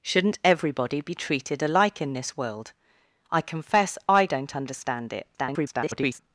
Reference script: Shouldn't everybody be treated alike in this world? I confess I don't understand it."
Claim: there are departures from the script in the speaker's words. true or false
true